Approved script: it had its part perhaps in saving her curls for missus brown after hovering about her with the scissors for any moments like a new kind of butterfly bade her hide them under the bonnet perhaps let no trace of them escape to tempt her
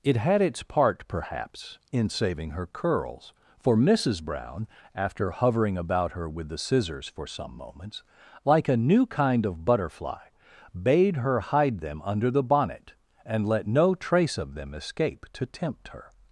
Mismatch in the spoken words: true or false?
true